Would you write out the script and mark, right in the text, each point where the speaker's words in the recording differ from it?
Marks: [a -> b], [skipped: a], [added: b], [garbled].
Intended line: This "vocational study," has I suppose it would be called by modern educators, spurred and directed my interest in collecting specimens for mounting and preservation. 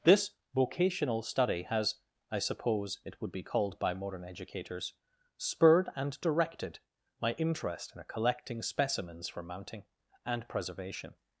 This "vocational study," has I suppose it would be called by modern educators, spurred and directed my interest in collecting specimens for mounting and preservation.